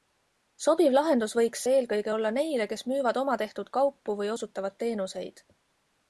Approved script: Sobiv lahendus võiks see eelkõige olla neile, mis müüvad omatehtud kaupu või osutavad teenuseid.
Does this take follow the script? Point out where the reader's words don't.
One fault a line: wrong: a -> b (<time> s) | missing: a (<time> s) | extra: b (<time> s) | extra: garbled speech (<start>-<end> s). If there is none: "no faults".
wrong: mis -> kes (2.7 s)